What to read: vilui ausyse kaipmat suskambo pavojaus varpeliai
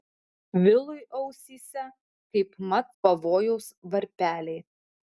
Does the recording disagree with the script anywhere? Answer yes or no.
yes